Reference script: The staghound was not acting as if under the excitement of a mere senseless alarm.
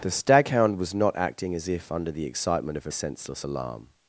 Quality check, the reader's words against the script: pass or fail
fail